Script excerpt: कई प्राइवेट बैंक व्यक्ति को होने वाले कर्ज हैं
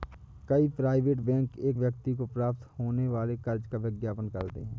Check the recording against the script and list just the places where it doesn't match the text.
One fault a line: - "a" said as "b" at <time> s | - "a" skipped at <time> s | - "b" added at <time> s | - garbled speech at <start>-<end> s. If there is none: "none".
- "एक" added at 1.6 s
- "प्राप्त" added at 2.3 s
- "का विज्ञापन करते" added at 3.7 s